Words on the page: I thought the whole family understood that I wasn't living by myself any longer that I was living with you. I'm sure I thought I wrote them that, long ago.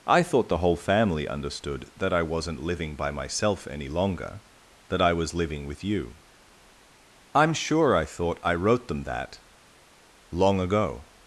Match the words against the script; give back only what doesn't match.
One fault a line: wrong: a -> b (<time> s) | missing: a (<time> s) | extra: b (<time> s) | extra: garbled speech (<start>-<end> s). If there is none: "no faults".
no faults